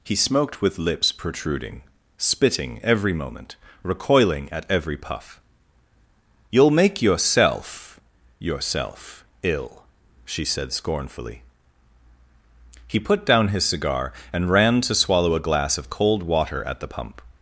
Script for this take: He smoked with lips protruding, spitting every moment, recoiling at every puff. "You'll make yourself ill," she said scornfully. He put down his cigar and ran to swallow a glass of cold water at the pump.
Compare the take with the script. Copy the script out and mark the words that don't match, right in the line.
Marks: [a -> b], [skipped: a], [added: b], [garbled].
He smoked with lips protruding, spitting every moment, recoiling at every puff. "You'll make yourself [added: yourself] ill," she said scornfully. He put down his cigar and ran to swallow a glass of cold water at the pump.